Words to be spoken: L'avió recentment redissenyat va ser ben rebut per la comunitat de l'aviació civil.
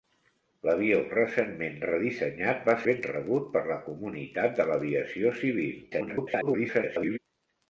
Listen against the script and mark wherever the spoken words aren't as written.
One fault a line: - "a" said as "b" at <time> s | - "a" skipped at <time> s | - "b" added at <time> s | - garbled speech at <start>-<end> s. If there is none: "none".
- "ser" skipped at 2.8 s
- garbled speech at 5.9-7.2 s